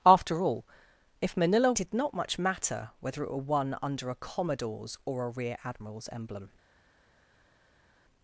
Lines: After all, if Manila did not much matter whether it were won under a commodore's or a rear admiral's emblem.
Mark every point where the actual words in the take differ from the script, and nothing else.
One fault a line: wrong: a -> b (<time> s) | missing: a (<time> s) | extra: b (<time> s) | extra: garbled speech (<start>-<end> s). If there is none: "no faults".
no faults